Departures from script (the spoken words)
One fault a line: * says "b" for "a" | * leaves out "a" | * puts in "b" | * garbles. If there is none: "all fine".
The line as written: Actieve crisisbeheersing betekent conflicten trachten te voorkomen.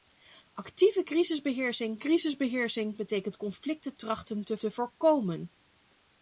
* puts in "crisisbeheersing"
* puts in "te"